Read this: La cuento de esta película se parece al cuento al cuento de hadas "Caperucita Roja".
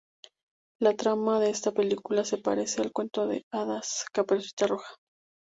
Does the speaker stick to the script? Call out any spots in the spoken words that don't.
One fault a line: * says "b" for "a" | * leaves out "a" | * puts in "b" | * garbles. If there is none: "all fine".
* says "trama" for "cuento"
* leaves out "al cuento"